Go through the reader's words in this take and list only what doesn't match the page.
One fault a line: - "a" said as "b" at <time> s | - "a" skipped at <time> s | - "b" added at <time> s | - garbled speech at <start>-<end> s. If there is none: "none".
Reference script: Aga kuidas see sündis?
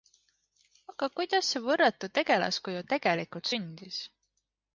- "võrratu tegelaskuju tegelikult" added at 1.6 s